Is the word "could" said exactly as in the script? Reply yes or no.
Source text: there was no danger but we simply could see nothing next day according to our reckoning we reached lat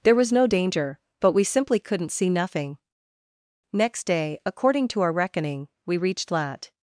no